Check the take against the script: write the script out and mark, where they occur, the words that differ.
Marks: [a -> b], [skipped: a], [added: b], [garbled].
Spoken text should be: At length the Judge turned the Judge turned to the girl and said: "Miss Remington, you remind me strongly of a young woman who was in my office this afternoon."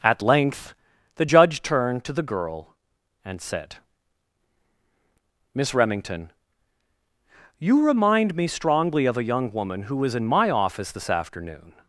At length the Judge turned [skipped: the Judge turned] to the girl and said: "Miss Remington, you remind me strongly of a young woman who was in my office this afternoon."